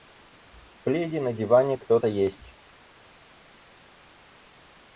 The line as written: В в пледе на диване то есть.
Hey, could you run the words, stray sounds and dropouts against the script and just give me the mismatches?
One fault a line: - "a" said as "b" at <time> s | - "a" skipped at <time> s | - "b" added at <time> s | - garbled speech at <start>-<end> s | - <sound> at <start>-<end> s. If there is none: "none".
- "в" skipped at 0.8 s
- "кто" added at 1.8 s